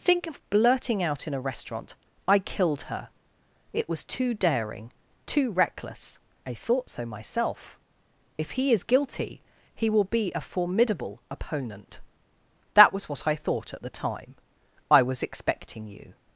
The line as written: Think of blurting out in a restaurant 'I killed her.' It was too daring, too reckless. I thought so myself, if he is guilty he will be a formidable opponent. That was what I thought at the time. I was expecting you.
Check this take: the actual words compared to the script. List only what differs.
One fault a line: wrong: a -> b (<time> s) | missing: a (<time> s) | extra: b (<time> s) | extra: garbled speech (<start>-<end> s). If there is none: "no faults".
no faults